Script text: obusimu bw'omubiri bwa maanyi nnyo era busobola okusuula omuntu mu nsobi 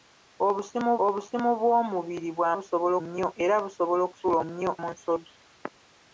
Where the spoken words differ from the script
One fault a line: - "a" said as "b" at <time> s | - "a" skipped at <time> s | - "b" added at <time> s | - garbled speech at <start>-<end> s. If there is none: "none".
- "obusimu" added at 1.0 s
- "maanyi" said as "busobola" at 2.6 s
- "omuntu" said as "nnyo" at 4.4 s